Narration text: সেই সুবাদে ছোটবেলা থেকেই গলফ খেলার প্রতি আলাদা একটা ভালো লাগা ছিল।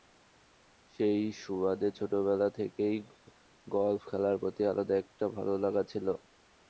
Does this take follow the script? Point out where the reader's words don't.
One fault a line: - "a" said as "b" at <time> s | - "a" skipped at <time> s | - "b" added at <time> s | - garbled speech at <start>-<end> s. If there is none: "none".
none